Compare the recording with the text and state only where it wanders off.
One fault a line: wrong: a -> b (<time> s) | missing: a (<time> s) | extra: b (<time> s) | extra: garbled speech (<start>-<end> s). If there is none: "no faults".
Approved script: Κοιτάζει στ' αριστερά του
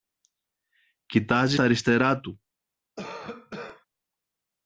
missing: στ (1.6 s)